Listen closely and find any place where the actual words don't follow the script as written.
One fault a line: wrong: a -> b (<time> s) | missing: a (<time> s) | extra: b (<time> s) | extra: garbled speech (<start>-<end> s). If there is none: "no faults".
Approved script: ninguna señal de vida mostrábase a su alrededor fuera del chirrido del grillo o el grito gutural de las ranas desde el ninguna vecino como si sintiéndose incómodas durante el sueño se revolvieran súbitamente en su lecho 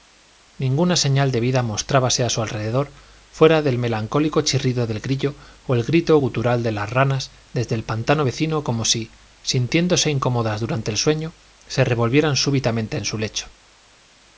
extra: melancólico (3.8 s)
wrong: ninguna -> pantano (7.8 s)